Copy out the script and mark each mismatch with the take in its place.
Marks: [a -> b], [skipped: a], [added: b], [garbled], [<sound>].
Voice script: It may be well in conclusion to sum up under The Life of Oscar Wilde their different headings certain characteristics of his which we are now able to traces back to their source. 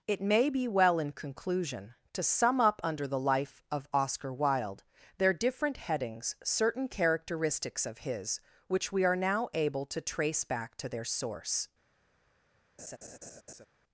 It may be well in conclusion to sum up under The Life of Oscar Wilde their different headings certain characteristics of his which we are now able to [traces -> trace] back to their source. [laugh]